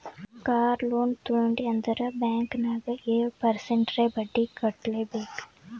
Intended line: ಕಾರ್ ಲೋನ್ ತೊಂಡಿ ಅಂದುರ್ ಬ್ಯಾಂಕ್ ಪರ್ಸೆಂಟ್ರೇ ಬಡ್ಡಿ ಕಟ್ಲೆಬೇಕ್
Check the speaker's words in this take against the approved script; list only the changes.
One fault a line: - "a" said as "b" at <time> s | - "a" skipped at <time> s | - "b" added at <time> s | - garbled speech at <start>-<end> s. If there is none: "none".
- "ನಾಗ್ ಏಳ್" added at 2.6 s